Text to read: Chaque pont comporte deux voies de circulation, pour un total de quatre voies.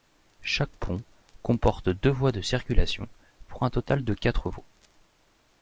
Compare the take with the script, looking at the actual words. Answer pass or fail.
pass